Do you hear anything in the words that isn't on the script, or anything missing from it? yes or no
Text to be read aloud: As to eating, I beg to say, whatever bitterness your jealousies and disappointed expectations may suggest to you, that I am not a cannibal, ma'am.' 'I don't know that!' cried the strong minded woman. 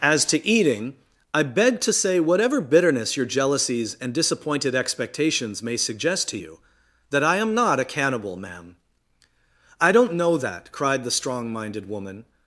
no